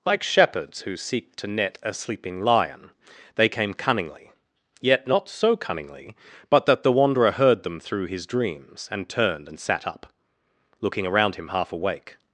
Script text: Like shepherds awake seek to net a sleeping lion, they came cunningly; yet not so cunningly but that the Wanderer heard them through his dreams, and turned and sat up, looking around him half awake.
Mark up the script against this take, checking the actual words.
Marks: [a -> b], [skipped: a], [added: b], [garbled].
Like shepherds [awake -> who] seek to net a sleeping lion, they came cunningly; yet not so cunningly but that the Wanderer heard them through his dreams, and turned and sat up, looking around him half awake.